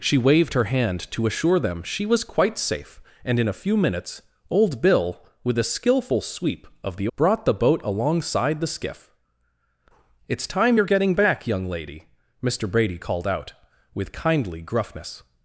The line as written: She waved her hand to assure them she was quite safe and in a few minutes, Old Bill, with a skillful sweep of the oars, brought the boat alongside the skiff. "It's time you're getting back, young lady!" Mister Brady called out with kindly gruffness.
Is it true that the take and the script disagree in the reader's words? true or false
true